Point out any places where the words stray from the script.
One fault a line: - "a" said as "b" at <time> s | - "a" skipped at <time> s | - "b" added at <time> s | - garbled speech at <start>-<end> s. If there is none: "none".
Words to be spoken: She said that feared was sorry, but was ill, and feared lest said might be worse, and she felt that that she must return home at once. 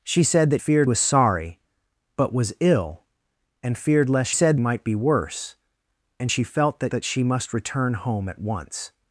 none